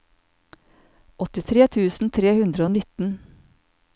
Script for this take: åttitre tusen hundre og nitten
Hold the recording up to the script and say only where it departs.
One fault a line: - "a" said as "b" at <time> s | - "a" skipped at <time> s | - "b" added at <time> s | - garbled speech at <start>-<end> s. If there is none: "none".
- "tre" added at 2.2 s